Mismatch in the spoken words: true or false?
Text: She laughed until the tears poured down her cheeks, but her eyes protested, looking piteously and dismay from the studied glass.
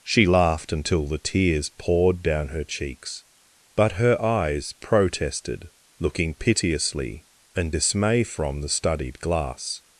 false